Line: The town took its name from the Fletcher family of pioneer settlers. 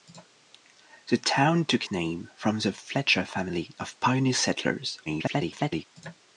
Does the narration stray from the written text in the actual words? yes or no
yes